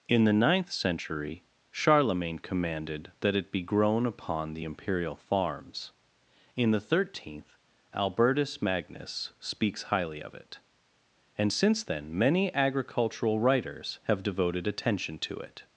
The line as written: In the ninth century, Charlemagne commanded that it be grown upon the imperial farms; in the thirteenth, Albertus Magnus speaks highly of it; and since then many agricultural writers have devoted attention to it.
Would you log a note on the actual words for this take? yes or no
no